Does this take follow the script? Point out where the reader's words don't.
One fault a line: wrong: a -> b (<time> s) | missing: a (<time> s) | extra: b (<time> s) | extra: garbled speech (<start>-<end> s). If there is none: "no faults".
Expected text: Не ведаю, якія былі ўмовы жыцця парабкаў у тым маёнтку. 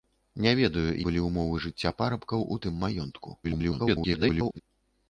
missing: якія (0.8 s)
extra: garbled speech (3.4-4.6 s)